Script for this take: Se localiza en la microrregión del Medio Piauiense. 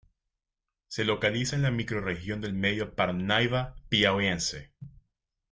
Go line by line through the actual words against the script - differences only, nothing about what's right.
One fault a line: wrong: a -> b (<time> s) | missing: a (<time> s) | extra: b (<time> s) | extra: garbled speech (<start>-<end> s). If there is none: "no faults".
extra: Parnaíba (3.0 s)